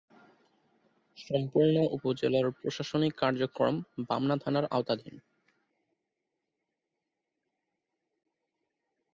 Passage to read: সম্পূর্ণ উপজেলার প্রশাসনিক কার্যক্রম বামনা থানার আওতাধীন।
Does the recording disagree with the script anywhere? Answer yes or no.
no